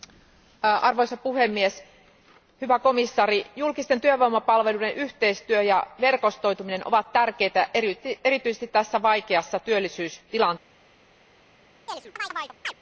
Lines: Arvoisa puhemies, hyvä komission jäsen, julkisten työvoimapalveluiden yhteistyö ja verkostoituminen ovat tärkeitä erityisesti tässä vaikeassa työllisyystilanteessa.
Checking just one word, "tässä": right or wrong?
right